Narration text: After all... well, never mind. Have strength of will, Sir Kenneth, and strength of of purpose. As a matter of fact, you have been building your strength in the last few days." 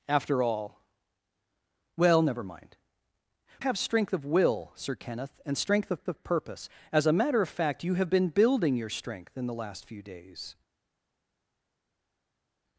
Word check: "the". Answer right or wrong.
right